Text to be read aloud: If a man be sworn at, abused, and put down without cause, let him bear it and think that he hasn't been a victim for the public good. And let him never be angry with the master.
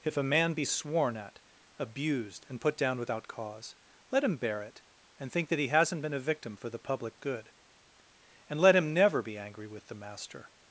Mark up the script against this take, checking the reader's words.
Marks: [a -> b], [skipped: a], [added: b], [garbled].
If a man be sworn at, abused, and put down without cause, let him bear it and think that he hasn't been a victim for the public good. And let him never be angry with the master.